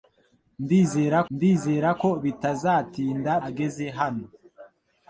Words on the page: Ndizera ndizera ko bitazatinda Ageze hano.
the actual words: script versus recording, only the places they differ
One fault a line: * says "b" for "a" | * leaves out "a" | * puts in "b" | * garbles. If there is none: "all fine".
all fine